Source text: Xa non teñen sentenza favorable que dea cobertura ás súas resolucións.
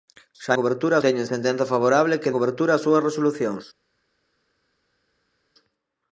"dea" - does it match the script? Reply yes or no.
no